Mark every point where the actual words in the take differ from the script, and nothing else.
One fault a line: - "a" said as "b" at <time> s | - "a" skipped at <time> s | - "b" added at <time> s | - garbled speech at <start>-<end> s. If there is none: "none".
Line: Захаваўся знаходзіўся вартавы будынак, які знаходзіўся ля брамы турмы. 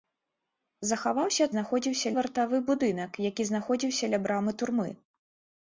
none